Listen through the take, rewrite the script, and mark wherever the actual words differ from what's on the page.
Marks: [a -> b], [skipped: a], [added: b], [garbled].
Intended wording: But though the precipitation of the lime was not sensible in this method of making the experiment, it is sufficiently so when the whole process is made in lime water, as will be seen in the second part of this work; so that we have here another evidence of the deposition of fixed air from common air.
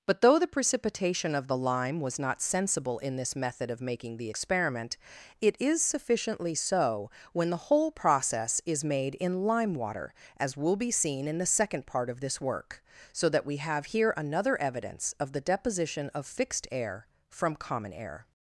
But though the precipitation of the lime was not sensible in this method of making the experiment, it is sufficiently so when the whole process is made in lime water, as will be seen in the second part of this work; so that we have here another evidence of the deposition of fixed air from common air.